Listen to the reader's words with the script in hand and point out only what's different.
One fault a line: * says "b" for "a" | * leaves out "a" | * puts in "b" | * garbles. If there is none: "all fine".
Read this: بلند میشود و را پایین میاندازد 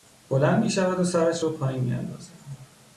* puts in "سرش"